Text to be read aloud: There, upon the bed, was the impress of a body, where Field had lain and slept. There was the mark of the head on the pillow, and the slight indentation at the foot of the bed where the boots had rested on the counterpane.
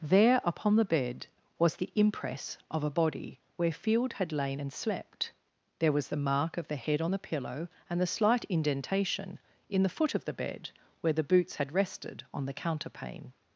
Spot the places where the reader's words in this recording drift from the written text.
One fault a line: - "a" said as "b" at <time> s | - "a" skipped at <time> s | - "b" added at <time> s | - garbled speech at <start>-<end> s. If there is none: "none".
- "at" said as "in" at 9.7 s